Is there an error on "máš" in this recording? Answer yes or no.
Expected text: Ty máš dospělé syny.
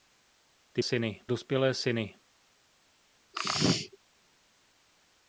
yes